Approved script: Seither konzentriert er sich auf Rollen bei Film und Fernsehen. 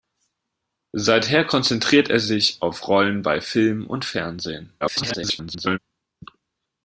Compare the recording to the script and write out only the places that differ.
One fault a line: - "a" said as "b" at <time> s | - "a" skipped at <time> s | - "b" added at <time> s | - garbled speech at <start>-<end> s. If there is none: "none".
- garbled speech at 4.8-5.8 s